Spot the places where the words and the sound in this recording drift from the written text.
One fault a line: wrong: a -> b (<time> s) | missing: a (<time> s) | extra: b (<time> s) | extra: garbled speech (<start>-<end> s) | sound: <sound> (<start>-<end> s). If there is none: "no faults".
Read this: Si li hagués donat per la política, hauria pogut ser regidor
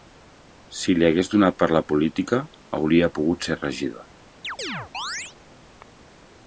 sound: chirp (4.4-5.4 s)